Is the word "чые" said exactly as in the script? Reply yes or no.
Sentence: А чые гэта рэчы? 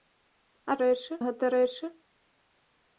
no